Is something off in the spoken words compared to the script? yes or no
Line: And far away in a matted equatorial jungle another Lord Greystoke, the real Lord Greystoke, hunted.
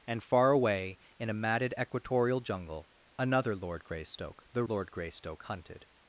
yes